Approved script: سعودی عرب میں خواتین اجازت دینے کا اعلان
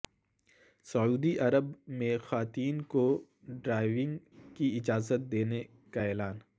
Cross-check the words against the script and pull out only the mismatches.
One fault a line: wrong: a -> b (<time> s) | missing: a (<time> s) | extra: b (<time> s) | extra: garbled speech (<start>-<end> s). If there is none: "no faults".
extra: کو ڈرائیونگ کی (2.9 s)